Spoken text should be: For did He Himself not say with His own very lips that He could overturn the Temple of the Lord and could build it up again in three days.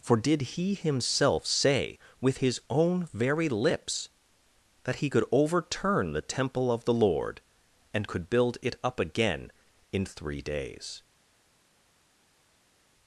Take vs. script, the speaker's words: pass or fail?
fail